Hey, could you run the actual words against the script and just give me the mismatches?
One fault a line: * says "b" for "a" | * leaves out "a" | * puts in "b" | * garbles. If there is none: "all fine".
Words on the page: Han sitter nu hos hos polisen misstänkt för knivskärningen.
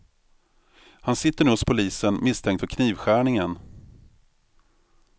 * leaves out "hos"